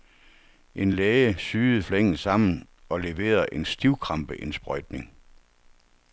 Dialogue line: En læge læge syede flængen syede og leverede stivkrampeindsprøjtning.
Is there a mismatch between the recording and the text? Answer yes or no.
yes